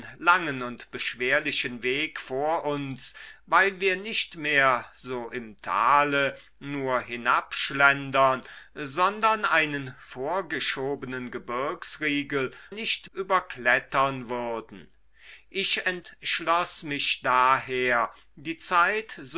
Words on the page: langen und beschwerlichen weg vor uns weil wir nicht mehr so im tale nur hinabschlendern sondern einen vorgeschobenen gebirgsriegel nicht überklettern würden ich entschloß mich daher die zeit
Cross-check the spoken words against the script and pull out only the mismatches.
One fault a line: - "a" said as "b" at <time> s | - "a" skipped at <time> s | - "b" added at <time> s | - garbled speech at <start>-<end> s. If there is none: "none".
none